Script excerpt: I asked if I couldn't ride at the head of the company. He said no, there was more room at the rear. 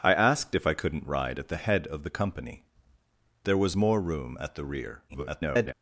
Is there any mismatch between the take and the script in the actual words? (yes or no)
yes